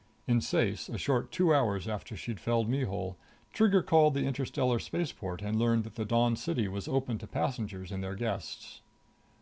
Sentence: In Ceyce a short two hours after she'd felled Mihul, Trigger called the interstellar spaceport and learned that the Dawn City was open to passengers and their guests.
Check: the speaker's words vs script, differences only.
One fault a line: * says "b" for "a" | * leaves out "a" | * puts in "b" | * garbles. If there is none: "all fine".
all fine